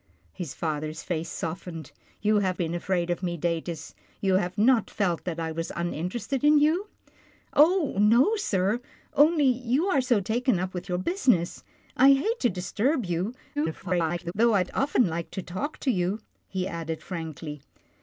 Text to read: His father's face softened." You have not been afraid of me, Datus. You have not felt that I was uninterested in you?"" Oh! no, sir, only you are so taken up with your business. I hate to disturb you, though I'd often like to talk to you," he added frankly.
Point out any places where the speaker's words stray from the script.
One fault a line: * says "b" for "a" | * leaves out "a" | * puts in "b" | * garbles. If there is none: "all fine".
* leaves out "not"
* garbles